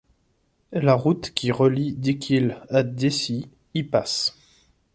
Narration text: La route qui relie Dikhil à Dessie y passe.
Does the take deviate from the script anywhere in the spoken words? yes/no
no